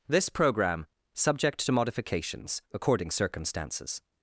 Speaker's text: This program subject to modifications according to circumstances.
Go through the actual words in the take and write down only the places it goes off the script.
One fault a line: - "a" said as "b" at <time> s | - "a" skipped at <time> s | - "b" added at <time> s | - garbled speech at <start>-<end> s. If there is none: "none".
- "to" skipped at 3.1 s